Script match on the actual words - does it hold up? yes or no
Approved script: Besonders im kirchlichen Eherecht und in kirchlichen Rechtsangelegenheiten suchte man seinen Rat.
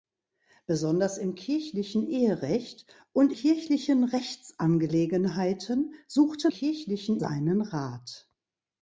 no